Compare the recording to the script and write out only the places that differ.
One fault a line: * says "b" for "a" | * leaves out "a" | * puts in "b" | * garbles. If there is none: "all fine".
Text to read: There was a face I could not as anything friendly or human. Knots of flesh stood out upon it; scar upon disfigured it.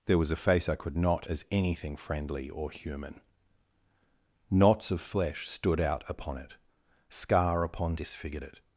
all fine